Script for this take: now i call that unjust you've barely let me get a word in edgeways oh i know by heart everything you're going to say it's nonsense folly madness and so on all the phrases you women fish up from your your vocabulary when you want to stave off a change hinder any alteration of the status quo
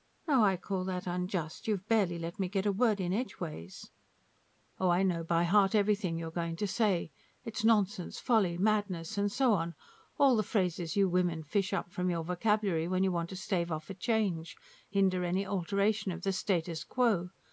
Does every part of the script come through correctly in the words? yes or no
no